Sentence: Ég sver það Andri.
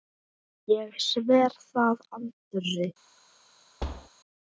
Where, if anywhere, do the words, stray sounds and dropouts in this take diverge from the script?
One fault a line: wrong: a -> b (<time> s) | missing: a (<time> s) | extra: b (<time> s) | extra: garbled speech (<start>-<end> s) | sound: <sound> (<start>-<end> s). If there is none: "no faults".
sound: thud (3.8-4.1 s)